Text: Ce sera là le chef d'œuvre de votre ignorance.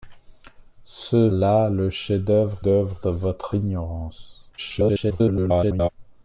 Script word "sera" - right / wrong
wrong